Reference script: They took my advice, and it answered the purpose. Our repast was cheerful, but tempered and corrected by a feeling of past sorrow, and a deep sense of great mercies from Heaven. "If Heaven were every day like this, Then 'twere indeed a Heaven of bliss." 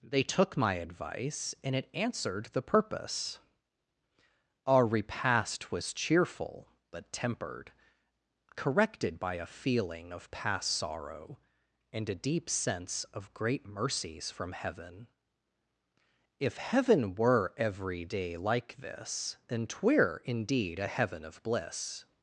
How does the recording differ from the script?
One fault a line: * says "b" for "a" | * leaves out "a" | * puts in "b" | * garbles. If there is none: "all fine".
* leaves out "and"